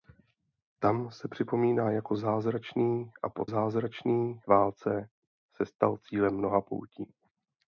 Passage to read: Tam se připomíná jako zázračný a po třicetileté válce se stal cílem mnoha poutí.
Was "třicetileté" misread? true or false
true